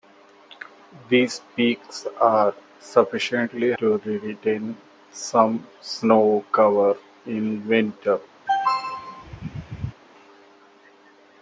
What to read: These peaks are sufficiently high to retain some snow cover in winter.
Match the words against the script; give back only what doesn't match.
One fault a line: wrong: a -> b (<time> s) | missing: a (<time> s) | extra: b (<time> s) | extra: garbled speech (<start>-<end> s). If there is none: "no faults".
missing: high (3.7 s)